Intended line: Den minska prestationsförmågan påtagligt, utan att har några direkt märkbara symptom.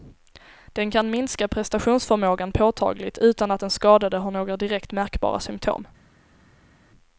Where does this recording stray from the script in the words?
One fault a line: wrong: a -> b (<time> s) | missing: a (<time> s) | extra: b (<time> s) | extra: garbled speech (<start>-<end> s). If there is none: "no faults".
extra: kan (0.9 s)
extra: den skadade (3.6 s)